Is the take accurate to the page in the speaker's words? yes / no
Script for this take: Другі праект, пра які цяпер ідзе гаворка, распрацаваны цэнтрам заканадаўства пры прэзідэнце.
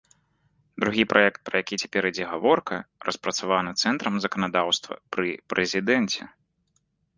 yes